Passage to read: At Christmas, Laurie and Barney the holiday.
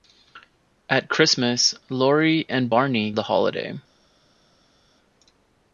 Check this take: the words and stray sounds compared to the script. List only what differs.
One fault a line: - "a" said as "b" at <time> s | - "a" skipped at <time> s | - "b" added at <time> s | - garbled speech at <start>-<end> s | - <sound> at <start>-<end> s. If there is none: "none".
none